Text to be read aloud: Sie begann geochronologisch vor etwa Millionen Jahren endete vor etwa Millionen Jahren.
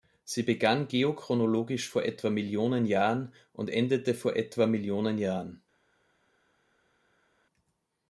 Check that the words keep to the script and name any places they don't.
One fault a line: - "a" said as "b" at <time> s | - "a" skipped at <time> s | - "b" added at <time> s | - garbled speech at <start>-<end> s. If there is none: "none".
- "und" added at 3.5 s